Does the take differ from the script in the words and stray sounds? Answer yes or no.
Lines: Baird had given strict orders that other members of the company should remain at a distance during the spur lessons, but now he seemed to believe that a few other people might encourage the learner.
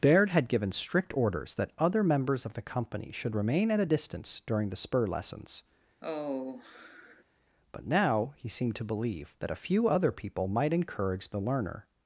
yes